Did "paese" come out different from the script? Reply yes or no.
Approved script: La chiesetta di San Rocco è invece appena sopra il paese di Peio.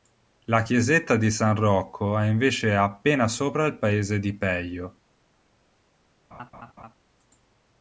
no